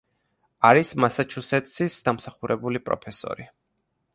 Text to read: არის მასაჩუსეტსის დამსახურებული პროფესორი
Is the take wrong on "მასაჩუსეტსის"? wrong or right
right